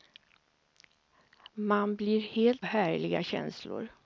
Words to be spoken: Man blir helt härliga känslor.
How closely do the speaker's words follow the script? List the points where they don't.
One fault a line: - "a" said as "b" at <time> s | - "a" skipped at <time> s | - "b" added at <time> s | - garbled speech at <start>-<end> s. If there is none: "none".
none